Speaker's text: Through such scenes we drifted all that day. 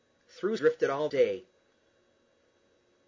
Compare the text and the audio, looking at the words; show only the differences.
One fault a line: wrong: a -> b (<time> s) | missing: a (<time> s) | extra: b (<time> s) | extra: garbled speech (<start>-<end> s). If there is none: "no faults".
missing: such scenes we (0.6 s)
missing: that (1.1 s)